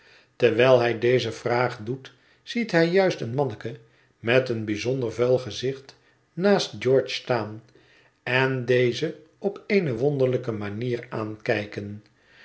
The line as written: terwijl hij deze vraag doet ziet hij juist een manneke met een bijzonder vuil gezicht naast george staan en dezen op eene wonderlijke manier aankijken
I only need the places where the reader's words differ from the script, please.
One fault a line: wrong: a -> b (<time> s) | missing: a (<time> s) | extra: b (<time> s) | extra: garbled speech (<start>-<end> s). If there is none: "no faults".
no faults